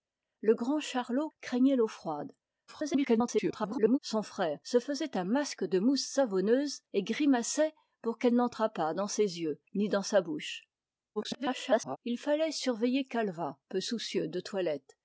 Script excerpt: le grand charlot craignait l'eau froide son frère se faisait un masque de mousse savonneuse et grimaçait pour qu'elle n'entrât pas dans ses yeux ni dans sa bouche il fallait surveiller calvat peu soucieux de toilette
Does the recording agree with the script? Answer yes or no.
no